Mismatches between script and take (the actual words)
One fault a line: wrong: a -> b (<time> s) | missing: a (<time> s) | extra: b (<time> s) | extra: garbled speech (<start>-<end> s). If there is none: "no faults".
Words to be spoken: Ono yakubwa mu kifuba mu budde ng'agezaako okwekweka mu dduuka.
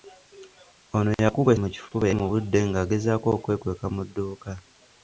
no faults